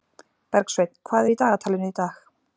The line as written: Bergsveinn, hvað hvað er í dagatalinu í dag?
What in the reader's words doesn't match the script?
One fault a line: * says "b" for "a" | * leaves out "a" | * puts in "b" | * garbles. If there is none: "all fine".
* leaves out "hvað"